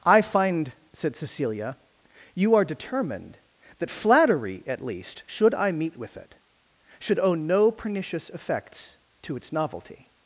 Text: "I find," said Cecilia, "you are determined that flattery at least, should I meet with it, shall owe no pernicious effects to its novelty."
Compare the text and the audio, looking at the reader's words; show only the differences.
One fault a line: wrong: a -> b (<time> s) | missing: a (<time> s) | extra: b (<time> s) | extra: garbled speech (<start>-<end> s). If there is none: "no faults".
wrong: shall -> should (7.0 s)